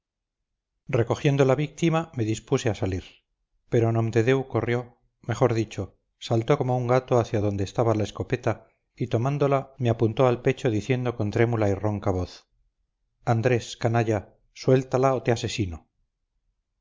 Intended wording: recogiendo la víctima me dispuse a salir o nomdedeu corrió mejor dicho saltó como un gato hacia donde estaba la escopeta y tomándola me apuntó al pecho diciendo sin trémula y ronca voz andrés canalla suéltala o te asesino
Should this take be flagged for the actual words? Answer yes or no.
yes